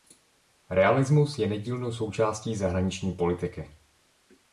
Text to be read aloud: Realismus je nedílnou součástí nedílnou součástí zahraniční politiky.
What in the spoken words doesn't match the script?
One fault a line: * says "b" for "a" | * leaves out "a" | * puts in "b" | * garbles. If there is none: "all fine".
* leaves out "nedílnou součástí"